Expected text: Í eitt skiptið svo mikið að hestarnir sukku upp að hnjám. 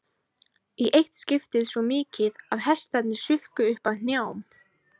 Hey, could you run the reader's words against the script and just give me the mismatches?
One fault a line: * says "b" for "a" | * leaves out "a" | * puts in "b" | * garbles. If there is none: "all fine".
all fine